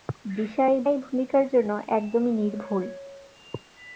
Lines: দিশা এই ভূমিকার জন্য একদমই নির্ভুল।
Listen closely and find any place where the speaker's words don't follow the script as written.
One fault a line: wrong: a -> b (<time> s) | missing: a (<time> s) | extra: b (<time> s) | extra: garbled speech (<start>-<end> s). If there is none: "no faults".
extra: এই (0.8 s)